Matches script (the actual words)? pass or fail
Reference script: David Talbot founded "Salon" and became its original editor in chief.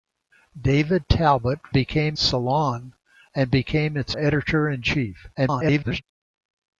fail